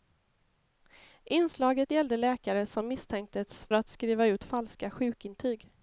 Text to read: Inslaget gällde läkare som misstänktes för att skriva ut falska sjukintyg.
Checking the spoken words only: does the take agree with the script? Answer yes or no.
no